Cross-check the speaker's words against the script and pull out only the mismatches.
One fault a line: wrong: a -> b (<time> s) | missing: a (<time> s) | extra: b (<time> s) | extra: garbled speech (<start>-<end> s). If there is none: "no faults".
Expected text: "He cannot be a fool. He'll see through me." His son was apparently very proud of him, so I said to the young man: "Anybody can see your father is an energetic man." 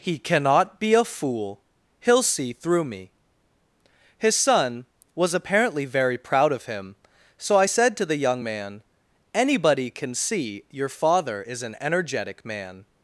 no faults